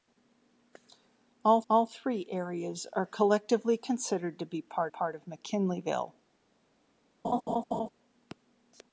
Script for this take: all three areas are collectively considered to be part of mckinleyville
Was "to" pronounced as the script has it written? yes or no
yes